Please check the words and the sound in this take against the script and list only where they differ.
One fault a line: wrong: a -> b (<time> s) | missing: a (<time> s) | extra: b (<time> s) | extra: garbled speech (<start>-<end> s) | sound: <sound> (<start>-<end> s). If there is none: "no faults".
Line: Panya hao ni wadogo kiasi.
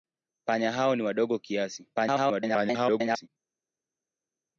extra: garbled speech (1.9-3.3 s)